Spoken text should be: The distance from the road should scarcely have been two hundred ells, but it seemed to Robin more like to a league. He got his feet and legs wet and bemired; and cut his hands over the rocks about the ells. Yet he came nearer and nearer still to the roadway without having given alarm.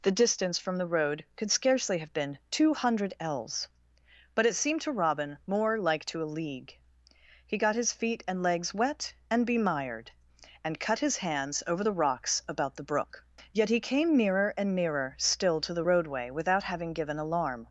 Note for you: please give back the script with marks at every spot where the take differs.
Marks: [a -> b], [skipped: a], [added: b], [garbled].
The distance from the road [should -> could] scarcely have been two hundred ells, but it seemed to Robin more like to a league. He got his feet and legs wet and bemired; and cut his hands over the rocks about the [ells. -> brook] Yet he came nearer and nearer still to the roadway without having given alarm.